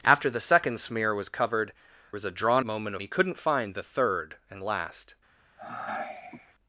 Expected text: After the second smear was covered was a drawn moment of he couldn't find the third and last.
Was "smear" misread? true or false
false